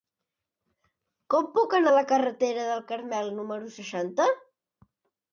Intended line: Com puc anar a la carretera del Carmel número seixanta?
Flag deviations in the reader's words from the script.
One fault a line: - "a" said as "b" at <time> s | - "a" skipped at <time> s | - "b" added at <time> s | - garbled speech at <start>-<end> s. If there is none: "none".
none